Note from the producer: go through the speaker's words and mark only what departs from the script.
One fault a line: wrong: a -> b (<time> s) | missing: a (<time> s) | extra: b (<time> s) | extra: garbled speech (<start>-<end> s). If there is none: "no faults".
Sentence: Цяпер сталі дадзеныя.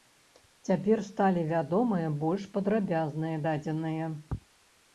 extra: вядомыя больш падрабязныя (1.5 s)